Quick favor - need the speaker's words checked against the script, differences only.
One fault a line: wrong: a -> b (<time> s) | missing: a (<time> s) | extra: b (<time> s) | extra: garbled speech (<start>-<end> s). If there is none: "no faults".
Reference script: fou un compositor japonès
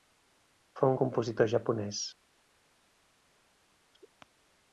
no faults